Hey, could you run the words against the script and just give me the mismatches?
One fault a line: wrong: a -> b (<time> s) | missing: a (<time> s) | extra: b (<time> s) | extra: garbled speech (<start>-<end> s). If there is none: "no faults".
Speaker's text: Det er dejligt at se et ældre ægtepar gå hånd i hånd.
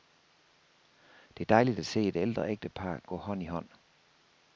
no faults